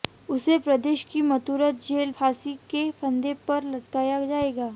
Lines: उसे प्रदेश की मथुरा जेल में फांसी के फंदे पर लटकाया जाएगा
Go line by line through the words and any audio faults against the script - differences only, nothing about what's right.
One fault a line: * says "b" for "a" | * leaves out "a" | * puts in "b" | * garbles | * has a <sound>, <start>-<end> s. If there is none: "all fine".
* leaves out "में"